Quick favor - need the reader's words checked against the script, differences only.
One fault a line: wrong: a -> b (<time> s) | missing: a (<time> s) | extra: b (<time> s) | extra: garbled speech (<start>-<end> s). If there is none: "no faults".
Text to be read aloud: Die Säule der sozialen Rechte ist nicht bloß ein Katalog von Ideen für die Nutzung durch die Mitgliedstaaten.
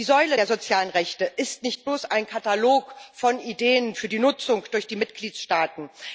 no faults